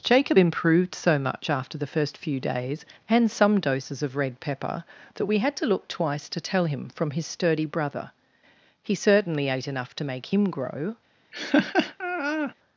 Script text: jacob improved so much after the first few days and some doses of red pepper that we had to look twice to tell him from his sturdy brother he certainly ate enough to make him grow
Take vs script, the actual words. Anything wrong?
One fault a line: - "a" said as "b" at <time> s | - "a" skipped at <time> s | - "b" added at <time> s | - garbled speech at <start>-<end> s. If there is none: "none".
none